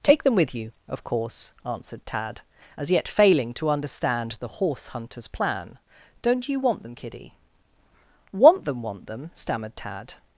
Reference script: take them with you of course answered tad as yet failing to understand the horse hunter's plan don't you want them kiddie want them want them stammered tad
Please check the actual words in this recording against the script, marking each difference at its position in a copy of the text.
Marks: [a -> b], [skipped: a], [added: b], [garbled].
take them with you of course answered tad as yet failing to understand the horse hunter's plan don't you want them kiddie want them want them stammered tad